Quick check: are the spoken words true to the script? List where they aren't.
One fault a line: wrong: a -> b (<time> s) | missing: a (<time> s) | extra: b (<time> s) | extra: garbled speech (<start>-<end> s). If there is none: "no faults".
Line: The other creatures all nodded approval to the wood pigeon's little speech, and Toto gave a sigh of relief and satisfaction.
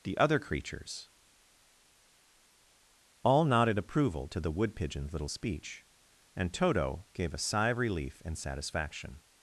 no faults